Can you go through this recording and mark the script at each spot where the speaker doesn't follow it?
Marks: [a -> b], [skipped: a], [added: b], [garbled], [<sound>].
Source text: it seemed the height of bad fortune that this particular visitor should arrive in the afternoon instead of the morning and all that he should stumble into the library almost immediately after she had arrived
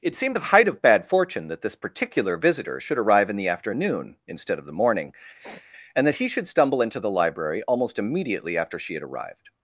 it seemed the height of bad fortune that this particular visitor should arrive in the afternoon instead of the morning [sniff] and [skipped: all] that he should stumble into the library almost immediately after she had arrived